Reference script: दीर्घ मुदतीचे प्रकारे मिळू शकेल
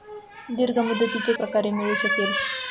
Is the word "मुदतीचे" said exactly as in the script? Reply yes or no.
yes